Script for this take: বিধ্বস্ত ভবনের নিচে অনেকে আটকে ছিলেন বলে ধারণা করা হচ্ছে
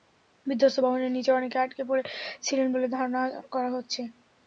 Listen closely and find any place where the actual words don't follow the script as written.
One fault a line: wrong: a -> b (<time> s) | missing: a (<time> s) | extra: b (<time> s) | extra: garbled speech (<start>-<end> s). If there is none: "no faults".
extra: পড়ে (1.9 s)